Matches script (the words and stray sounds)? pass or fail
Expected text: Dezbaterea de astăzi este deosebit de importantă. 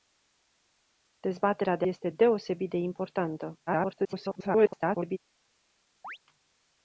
fail